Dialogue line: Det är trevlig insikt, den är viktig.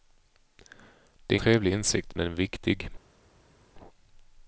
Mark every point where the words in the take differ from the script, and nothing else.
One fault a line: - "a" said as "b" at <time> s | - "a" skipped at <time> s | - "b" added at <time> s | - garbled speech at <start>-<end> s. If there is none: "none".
none